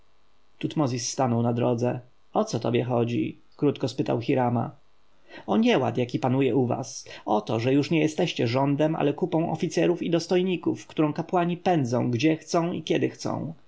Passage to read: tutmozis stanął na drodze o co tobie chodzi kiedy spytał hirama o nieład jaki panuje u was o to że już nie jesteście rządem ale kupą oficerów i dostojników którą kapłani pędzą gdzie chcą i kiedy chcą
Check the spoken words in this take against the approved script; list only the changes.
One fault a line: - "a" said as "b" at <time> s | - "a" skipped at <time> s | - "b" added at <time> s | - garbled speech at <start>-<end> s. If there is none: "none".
- "kiedy" said as "krótko" at 3.6 s